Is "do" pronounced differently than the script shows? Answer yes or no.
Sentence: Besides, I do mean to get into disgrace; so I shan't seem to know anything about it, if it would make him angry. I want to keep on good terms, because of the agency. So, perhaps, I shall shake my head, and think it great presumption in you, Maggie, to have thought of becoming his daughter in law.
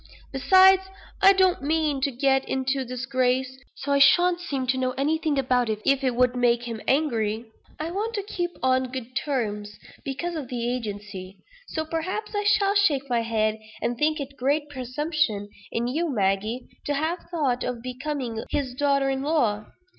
yes